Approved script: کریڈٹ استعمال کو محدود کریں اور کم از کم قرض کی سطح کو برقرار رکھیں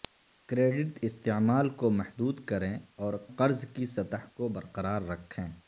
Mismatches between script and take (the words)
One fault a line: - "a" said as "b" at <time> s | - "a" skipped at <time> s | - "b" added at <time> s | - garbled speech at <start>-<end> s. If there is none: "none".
- "کم از کم" skipped at 3.1 s